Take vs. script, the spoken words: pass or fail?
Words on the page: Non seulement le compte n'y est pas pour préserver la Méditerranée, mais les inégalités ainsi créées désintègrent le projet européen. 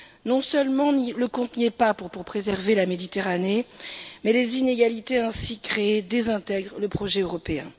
fail